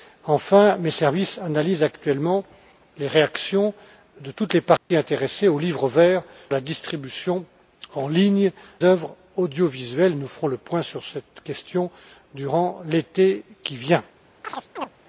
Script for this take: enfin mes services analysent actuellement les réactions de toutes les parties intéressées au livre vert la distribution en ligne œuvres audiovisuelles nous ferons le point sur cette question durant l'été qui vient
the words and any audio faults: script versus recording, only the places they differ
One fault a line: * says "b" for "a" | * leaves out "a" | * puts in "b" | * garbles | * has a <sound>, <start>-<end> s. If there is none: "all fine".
* has a dropout, 4.8-4.9 s
* has a chirp, 14.4-14.9 s